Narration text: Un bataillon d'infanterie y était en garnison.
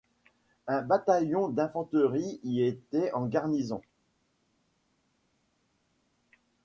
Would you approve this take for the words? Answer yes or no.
yes